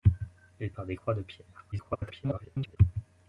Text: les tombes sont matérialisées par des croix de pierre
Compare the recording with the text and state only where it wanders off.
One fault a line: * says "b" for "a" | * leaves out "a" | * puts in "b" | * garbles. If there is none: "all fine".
* leaves out "tombes sont matérialisées"
* garbles